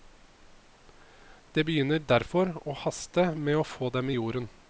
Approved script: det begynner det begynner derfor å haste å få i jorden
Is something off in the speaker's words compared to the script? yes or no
yes